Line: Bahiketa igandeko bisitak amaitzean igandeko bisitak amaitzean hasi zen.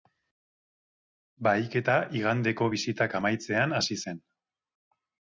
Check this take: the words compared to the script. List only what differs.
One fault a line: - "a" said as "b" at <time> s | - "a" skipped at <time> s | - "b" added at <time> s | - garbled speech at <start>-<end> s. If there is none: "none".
- "igandeko bisitak amaitzean" skipped at 3.8 s